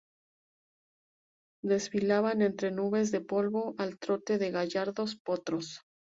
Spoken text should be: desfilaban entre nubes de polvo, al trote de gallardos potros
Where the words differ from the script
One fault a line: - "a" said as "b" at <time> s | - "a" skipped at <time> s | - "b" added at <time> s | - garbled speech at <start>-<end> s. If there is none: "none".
none